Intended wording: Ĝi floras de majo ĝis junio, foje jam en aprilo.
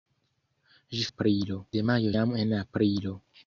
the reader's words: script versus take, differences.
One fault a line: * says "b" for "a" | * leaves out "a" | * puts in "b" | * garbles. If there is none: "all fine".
* says "aprilo" for "floras"
* leaves out "ĝis junio foje"